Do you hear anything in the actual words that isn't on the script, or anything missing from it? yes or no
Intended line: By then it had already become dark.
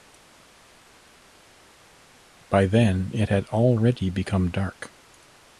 no